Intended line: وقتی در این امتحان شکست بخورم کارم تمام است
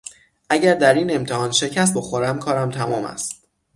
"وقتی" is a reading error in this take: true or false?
true